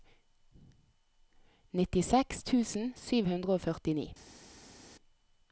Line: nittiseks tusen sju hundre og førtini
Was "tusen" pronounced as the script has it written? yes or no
yes